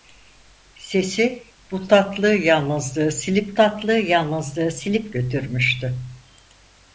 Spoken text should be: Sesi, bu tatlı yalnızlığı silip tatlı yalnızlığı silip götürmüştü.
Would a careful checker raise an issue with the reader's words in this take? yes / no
no